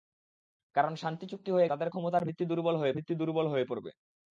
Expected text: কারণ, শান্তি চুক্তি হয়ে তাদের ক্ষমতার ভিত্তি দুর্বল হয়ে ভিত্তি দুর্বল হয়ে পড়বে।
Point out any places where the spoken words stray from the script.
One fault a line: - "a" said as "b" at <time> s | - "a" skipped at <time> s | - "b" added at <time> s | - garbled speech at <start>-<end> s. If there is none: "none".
none